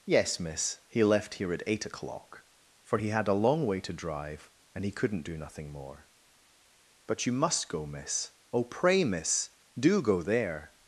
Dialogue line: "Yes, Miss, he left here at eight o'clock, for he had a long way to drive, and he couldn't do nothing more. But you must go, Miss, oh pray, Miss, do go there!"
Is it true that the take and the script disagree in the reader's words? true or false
false